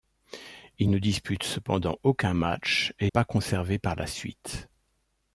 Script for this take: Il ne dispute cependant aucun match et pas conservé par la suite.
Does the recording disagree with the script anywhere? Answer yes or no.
no